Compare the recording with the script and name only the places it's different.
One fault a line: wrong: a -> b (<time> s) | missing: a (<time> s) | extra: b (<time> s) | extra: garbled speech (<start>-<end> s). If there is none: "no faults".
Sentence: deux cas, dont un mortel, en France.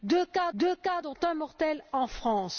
extra: deux cas (0.5 s)